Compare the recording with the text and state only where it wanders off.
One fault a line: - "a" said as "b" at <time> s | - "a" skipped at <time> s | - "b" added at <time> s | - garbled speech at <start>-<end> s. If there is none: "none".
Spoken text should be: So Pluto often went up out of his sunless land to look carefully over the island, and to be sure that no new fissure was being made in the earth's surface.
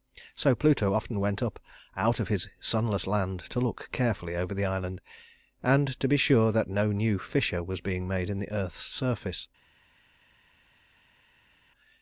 none